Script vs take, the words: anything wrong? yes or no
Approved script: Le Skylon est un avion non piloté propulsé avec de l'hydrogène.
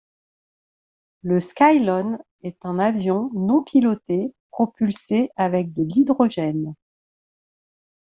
no